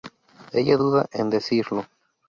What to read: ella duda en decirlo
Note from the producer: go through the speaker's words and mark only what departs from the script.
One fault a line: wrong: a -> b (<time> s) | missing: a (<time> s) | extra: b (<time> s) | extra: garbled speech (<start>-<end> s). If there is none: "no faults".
no faults